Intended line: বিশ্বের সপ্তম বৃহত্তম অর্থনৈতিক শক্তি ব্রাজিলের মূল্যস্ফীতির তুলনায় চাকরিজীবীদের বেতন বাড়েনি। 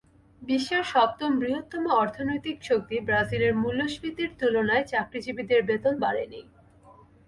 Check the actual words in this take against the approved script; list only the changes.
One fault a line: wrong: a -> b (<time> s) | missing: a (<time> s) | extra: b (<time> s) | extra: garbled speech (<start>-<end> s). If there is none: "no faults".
no faults